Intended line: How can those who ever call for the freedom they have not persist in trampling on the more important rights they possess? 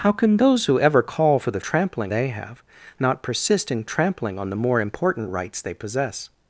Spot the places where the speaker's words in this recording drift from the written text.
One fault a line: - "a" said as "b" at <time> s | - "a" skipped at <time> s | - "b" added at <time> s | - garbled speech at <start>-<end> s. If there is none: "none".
- "freedom" said as "trampling" at 1.6 s